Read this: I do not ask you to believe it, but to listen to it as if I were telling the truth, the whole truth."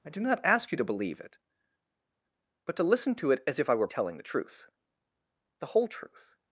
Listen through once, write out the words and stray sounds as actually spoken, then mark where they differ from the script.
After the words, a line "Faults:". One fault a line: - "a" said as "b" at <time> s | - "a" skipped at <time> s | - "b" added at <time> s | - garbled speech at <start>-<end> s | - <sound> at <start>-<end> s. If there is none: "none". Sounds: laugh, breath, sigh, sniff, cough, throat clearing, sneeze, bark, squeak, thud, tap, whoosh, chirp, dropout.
I do not ask you to believe it, but to listen to it as if I were telling the truth, the whole truth."
Faults:
none